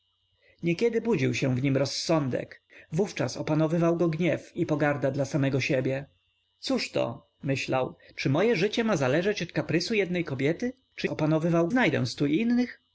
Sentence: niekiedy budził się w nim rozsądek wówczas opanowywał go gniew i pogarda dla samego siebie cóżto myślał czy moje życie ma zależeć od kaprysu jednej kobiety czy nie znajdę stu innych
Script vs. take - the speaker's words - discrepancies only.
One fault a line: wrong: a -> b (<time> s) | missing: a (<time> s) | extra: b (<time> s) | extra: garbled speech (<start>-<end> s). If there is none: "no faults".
wrong: nie -> opanowywał (11.1 s)